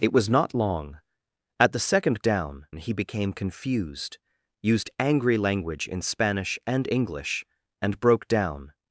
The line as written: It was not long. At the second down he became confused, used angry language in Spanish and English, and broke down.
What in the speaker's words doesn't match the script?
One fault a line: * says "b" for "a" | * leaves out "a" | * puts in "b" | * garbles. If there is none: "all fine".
all fine